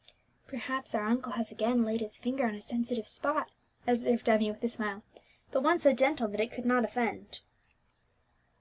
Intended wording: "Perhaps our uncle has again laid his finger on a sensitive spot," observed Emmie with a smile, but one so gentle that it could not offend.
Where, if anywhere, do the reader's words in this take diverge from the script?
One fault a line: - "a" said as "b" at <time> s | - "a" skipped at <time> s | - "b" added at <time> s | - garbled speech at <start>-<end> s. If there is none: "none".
none